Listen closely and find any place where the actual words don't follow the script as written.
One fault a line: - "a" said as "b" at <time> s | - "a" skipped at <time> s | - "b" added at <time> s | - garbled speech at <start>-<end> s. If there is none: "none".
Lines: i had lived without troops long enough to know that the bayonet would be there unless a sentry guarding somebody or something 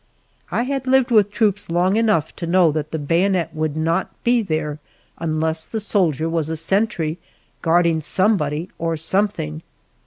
- "without" said as "with" at 1.1 s
- "not" added at 3.8 s
- "the soldier was" added at 5.7 s